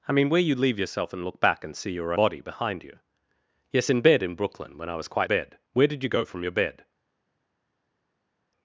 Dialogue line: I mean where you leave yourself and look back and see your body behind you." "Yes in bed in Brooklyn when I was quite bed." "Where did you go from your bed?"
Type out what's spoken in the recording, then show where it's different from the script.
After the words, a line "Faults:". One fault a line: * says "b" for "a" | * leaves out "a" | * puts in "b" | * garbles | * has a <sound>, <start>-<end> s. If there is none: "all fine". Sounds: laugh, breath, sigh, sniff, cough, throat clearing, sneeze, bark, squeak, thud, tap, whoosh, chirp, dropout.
I mean where you leave yourself and look back and see your body behind you." "Yes in bed in Brooklyn when I was quite bed." "Where did you go from your bed?"
Faults:
all fine